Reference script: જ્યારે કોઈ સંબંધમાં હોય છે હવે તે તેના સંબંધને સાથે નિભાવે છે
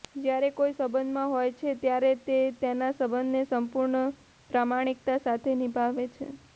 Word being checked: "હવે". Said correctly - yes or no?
no